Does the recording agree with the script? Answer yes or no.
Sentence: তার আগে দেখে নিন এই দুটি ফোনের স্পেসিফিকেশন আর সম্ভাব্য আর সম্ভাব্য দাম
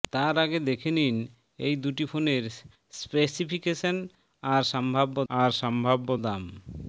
yes